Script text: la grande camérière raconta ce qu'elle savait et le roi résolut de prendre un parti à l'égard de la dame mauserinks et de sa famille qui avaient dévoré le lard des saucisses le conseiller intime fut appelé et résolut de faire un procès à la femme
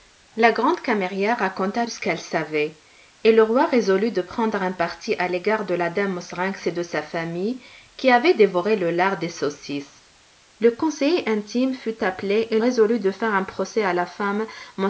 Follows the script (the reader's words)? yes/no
yes